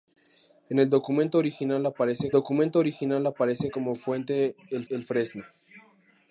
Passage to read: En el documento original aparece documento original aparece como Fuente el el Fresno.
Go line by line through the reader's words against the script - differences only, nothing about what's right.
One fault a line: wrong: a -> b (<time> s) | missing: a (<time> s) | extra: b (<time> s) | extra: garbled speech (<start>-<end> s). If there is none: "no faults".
no faults